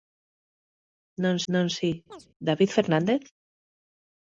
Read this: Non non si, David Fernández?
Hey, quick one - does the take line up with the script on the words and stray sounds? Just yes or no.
no